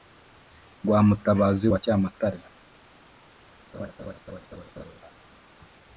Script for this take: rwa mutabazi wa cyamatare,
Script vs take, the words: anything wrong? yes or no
no